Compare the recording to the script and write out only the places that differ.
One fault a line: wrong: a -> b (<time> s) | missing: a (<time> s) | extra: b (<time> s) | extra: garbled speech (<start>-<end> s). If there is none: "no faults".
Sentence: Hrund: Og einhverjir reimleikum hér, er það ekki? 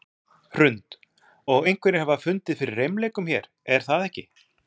extra: hafa fundið fyrir (2.0 s)